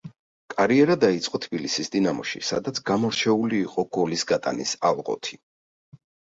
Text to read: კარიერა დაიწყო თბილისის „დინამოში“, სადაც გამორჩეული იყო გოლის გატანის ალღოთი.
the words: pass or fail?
pass